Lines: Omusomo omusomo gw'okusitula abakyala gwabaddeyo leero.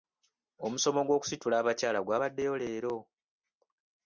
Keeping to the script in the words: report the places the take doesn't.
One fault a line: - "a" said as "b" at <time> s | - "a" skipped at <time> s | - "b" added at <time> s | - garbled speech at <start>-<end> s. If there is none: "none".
- "omusomo" skipped at 1.0 s